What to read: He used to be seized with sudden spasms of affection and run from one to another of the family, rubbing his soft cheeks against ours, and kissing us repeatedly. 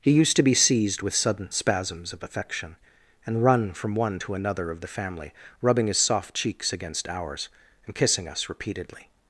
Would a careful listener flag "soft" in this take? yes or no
no